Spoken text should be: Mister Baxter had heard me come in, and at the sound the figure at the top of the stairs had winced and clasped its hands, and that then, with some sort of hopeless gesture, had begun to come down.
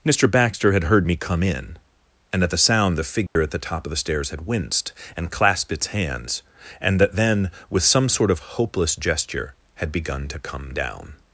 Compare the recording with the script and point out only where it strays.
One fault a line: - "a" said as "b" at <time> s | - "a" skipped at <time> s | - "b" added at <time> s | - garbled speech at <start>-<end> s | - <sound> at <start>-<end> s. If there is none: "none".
- dropout at 3.3-3.4 s